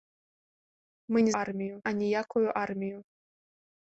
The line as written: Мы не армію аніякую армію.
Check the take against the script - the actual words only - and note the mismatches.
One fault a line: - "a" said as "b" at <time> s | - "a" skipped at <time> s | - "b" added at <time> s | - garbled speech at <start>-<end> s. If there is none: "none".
none